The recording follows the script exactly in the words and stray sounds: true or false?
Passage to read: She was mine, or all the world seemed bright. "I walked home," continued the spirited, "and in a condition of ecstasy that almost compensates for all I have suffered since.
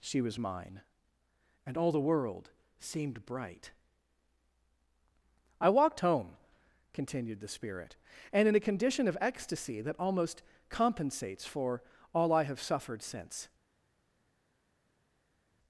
false